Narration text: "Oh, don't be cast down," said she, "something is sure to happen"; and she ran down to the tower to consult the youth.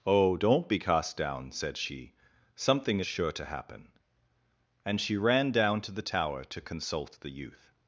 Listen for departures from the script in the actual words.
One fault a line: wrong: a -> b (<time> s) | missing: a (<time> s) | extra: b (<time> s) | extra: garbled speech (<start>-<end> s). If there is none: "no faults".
no faults